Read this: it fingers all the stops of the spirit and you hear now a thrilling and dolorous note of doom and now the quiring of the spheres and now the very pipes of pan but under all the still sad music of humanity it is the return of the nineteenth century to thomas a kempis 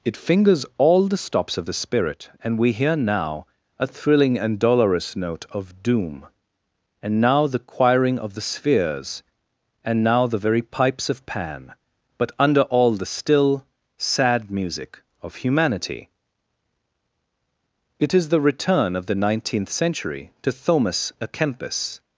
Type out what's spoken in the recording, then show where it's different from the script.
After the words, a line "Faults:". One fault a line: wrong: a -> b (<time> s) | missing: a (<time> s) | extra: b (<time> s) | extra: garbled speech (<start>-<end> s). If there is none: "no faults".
it fingers all the stops of the spirit and we hear now a thrilling and dolorous note of doom and now the quiring of the spheres and now the very pipes of pan but under all the still sad music of humanity it is the return of the nineteenth century to thomas a kempis
Faults:
wrong: you -> we (2.6 s)